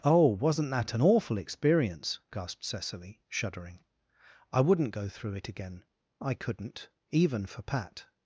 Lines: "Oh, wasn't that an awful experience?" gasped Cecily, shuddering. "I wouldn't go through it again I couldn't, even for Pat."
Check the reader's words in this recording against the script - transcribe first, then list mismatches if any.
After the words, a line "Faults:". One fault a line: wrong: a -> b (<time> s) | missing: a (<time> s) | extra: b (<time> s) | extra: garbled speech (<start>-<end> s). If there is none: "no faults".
"Oh, wasn't that an awful experience?" gasped Cecily, shuddering. "I wouldn't go through it again I couldn't, even for Pat."
Faults:
no faults